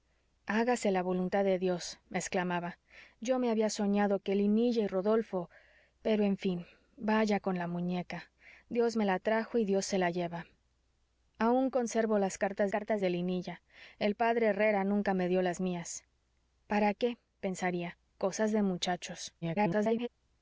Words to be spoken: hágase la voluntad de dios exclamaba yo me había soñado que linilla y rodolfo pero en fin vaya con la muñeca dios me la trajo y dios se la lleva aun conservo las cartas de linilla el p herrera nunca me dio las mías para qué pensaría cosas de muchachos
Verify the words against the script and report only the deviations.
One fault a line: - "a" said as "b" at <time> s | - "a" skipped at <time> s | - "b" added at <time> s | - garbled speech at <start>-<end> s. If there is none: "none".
- "cartas" added at 12.7 s
- garbled speech at 19.4-20.1 s